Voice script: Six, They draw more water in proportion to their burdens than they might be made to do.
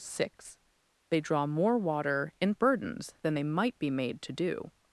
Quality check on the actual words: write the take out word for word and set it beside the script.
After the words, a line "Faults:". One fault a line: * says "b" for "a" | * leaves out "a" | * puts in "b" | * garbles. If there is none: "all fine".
Six, They draw more water in burdens than they might be made to do.
Faults:
* leaves out "proportion to their"